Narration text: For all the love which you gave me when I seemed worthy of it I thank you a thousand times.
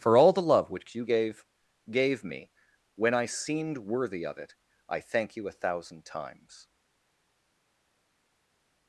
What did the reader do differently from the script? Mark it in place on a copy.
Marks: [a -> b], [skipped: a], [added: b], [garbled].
For all the love which you gave [added: gave] me when I seemed worthy of it I thank you a thousand times.